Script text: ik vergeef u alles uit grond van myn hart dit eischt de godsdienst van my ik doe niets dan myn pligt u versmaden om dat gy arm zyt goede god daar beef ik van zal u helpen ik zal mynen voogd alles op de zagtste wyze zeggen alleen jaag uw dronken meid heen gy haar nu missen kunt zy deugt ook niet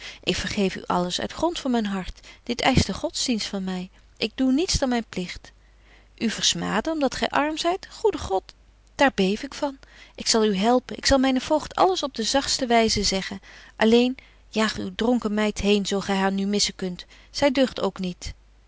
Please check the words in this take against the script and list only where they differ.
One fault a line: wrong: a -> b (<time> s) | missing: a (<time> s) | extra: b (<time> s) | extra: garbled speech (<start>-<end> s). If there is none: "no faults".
extra: ik (10.2 s)
extra: zo (15.9 s)